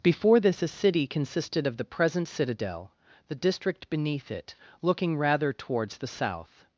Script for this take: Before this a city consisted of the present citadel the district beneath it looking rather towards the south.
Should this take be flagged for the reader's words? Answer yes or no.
no